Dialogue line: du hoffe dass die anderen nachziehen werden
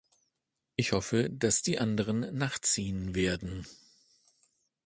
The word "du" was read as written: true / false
false